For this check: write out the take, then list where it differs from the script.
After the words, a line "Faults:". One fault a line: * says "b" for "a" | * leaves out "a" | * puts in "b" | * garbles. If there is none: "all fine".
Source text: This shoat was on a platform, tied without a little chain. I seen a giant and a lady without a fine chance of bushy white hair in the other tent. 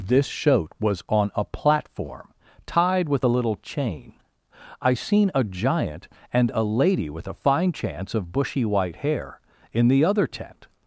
This shoat was on a platform, tied with a little chain. I seen a giant and a lady with a fine chance of bushy white hair in the other tent.
Faults:
* says "with" for "without"
* says "with" for "without"